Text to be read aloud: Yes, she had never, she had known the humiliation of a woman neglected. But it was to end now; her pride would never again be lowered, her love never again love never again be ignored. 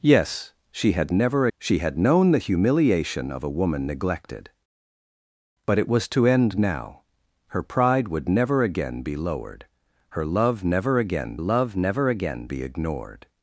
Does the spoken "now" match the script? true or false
true